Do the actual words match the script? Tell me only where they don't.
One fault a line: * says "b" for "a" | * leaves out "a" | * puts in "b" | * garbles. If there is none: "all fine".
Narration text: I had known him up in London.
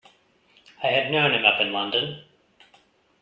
all fine